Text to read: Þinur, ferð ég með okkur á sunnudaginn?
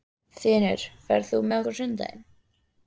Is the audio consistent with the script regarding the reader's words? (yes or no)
no